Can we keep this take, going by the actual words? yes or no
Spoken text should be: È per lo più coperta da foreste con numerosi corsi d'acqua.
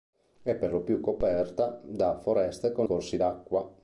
no